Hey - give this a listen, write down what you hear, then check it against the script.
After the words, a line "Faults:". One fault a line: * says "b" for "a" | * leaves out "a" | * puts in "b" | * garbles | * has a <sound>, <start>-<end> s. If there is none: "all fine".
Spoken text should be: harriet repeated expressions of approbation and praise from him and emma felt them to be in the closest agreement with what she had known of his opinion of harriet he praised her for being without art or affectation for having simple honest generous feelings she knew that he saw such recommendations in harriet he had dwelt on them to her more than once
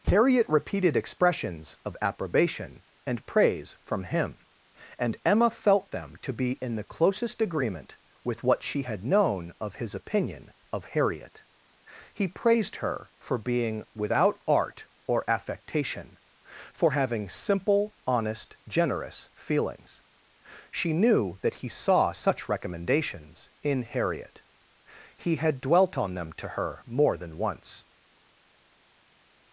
harriet repeated expressions of approbation and praise from him and emma felt them to be in the closest agreement with what she had known of his opinion of harriet he praised her for being without art or affectation for having simple honest generous feelings she knew that he saw such recommendations in harriet he had dwelt on them to her more than once
Faults:
all fine